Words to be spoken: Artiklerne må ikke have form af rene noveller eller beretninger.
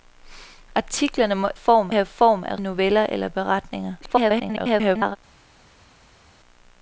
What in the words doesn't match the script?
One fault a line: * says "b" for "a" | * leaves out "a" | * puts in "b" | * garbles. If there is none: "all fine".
* says "form" for "ikke"
* leaves out "rene"
* garbles